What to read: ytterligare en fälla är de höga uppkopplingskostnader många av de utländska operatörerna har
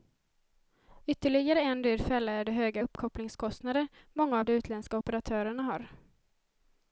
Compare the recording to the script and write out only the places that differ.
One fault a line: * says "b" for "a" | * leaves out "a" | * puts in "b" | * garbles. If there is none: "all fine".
* puts in "dyr"